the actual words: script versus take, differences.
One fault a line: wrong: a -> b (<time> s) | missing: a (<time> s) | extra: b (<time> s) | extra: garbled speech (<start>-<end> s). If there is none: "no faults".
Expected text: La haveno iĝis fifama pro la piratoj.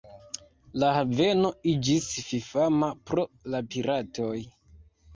no faults